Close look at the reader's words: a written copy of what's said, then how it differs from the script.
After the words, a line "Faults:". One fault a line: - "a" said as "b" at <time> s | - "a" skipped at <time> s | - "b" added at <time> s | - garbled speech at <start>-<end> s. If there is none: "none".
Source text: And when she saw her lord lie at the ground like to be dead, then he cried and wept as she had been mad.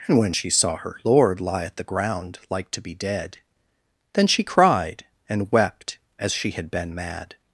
And when she saw her lord lie at the ground like to be dead, then she cried and wept as she had been mad.
Faults:
- "he" said as "she" at 4.3 s